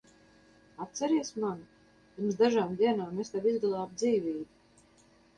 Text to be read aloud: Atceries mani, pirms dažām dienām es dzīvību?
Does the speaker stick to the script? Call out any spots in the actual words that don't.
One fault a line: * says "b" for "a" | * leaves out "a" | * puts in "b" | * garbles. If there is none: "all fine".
* puts in "tev izglābu"